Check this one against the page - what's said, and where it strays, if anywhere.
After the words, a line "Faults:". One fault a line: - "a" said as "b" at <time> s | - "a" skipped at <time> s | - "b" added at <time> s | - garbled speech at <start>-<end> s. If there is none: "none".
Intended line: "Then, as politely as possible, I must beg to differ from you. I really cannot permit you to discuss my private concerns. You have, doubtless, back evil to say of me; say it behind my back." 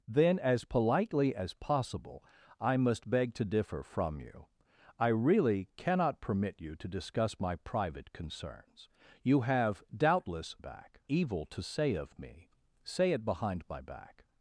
"Then, as politely as possible, I must beg to differ from you. I really cannot permit you to discuss my private concerns. You have, doubtless, back evil to say of me; say it behind my back."
Faults:
none